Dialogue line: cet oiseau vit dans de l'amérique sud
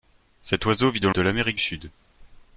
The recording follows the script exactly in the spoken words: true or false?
true